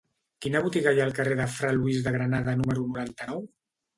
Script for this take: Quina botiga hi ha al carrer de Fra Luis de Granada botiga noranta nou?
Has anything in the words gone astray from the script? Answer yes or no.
yes